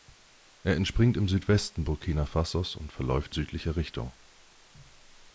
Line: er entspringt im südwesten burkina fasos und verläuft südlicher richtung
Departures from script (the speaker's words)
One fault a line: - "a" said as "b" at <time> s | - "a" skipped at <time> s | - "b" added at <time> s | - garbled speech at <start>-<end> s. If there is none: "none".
none